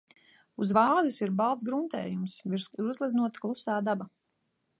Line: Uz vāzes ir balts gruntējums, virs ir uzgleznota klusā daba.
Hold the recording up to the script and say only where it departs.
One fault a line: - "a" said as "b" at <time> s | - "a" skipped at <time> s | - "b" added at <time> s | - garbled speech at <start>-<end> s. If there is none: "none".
none